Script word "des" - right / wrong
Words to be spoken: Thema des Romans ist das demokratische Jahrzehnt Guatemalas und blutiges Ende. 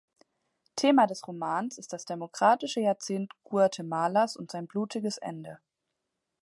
right